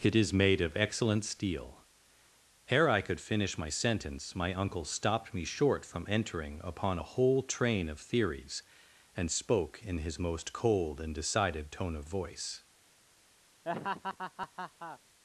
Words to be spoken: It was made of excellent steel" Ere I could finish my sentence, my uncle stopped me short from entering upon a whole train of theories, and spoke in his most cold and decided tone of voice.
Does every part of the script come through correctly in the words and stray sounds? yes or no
no